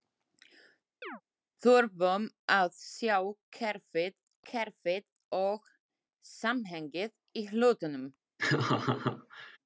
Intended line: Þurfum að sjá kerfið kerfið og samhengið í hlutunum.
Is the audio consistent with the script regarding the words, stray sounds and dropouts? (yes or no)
no